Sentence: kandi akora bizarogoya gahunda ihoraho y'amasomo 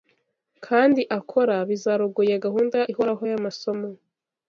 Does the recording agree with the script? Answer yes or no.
yes